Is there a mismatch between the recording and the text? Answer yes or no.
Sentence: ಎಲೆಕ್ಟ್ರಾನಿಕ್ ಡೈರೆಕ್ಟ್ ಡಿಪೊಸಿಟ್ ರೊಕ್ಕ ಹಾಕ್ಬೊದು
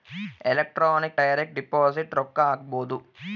no